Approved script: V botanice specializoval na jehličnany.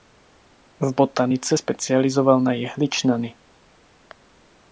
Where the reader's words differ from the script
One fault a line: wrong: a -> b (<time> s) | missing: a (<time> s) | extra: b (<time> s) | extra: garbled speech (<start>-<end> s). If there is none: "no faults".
no faults